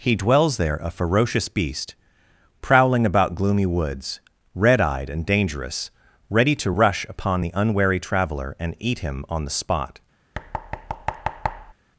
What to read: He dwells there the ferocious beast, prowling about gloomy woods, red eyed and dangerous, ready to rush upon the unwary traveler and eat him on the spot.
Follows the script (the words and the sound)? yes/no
no